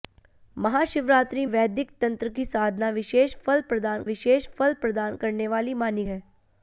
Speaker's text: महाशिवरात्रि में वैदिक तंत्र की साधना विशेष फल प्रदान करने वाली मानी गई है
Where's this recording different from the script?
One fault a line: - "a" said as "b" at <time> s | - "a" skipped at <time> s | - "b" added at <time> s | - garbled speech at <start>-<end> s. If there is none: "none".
- "में" skipped at 1.4 s
- "विशेष फल प्रदान" added at 4.0 s
- "गई" skipped at 6.1 s